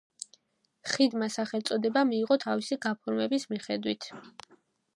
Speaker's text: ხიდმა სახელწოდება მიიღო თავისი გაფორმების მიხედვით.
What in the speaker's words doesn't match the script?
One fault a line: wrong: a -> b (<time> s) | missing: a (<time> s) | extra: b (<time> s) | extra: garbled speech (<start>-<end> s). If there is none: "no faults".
no faults